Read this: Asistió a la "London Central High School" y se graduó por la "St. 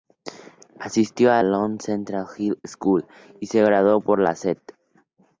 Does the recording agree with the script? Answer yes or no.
no